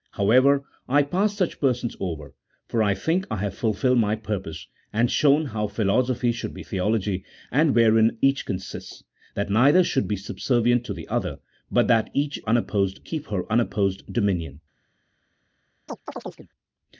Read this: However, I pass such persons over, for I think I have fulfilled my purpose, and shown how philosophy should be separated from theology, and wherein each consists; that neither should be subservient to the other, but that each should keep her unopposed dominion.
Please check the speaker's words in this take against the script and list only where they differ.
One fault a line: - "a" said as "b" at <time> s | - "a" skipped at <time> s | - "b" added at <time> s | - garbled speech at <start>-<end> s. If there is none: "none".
- "separated from" skipped at 6.6 s
- "should" said as "unopposed" at 12.5 s